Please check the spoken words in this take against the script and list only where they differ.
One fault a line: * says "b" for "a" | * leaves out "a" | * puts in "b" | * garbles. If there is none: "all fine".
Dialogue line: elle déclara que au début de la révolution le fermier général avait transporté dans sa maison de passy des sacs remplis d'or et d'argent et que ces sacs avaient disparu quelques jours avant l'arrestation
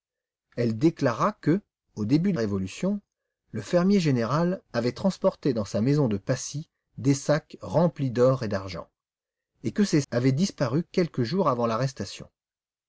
* leaves out "la"
* leaves out "sacs"